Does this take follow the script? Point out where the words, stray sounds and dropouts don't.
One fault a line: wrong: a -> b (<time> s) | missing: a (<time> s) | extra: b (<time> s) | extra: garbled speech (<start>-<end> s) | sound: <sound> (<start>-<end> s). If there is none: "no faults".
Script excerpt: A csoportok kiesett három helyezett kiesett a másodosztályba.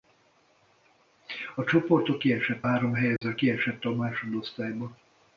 sound: dropout (3.2-3.2 s)